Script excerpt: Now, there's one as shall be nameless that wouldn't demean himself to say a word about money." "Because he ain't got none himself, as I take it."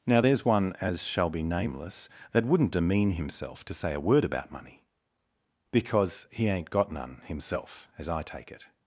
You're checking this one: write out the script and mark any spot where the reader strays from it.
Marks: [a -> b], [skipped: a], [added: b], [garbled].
Now, there's one as shall be nameless that wouldn't demean himself to say a word about money." "Because he ain't got none himself, as I take it."